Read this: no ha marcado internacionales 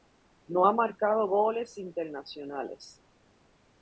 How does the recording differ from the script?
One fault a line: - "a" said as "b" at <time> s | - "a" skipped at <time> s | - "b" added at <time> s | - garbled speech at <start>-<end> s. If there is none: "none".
- "goles" added at 1.3 s